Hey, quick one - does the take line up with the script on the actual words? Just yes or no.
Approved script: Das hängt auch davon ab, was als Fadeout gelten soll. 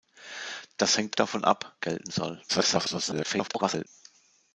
no